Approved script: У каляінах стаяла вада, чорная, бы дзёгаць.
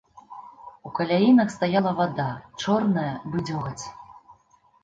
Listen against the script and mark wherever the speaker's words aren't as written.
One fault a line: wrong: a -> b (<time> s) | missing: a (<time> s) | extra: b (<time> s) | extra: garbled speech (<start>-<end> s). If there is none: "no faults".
no faults